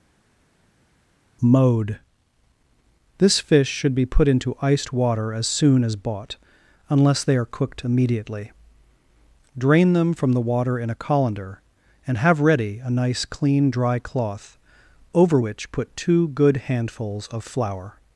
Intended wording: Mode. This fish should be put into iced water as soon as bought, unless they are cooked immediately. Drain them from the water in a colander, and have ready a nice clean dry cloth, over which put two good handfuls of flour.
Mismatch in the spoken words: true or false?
false